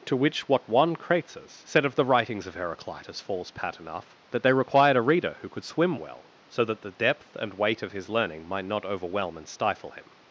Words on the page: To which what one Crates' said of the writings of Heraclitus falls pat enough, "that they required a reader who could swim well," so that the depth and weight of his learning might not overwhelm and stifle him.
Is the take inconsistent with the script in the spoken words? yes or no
no